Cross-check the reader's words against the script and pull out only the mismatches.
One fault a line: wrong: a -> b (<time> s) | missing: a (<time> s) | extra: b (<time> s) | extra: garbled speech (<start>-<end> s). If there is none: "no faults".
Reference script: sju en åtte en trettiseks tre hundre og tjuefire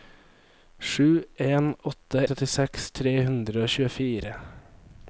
missing: en (2.3 s)